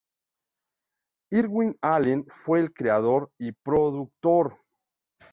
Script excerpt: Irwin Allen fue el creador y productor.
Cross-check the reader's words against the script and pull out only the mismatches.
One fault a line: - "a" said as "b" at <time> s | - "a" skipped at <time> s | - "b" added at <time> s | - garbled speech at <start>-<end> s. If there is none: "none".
none